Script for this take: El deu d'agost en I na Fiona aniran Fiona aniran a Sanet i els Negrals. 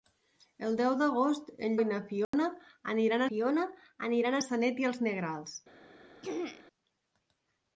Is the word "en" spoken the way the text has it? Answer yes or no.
yes